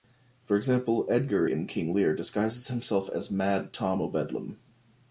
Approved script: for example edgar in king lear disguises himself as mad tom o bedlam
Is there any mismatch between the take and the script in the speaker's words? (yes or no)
no